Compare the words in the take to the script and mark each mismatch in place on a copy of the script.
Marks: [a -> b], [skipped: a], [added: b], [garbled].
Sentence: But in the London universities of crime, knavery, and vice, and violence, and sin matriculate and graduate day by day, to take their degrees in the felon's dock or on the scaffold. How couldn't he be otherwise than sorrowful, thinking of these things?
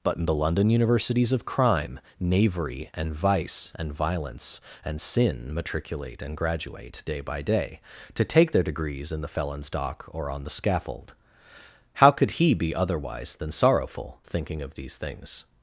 But in the London universities of crime, knavery, and vice, and violence, and sin matriculate and graduate day by day, to take their degrees in the felon's dock or on the scaffold. How [couldn't -> could] he be otherwise than sorrowful, thinking of these things?